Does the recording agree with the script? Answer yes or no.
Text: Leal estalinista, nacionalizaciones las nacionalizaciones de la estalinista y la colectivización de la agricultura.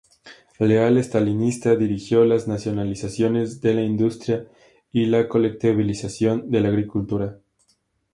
no